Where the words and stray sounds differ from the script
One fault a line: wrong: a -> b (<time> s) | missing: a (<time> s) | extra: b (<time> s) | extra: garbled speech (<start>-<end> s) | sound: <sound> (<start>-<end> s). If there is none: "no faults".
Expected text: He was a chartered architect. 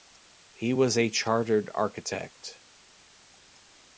no faults